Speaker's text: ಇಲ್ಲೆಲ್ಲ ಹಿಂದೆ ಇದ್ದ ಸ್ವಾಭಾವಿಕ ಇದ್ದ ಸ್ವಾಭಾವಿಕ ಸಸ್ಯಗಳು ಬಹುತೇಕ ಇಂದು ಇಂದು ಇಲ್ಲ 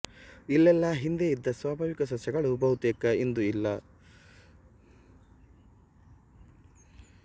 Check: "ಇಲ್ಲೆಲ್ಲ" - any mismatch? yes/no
no